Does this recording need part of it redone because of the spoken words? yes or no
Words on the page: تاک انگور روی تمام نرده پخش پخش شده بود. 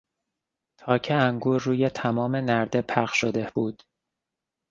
yes